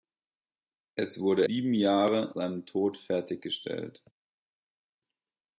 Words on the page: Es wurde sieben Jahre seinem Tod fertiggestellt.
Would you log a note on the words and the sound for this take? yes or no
no